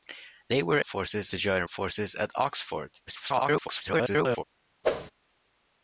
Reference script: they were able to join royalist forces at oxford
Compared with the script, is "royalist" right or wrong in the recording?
wrong